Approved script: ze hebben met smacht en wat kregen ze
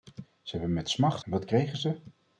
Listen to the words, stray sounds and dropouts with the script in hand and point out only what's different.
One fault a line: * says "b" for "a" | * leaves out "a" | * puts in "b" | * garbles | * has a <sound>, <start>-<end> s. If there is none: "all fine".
all fine